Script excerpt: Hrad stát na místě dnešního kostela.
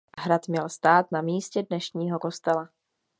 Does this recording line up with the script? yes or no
no